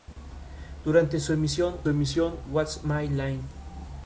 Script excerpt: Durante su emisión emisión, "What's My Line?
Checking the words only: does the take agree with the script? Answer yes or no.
yes